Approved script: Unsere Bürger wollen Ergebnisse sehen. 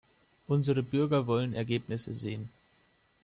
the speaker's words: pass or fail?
pass